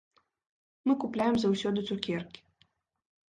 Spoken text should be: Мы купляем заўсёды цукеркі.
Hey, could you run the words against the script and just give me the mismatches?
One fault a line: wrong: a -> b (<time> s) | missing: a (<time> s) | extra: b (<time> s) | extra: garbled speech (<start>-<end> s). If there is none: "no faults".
no faults